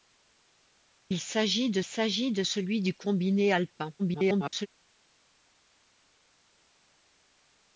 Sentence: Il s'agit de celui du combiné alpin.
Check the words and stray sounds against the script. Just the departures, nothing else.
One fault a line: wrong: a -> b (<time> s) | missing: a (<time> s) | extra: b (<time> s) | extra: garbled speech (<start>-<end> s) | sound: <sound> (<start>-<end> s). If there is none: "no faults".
extra: s'agit de (1.8 s)
extra: garbled speech (4.0-4.7 s)